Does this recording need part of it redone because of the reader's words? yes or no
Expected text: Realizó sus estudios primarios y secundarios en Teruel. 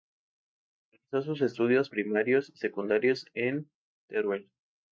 no